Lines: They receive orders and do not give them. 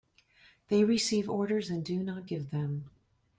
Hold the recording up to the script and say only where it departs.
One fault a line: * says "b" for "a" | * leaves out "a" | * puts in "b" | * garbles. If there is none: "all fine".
all fine